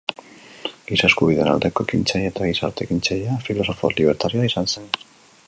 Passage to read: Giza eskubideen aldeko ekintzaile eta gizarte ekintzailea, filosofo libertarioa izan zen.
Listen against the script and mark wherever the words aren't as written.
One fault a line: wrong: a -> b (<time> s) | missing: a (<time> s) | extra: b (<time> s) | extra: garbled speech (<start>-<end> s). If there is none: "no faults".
no faults